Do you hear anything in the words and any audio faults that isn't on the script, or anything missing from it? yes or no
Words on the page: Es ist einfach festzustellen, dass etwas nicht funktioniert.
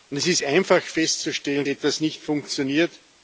yes